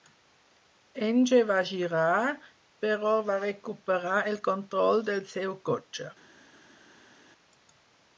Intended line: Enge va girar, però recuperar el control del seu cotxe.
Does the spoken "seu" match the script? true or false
true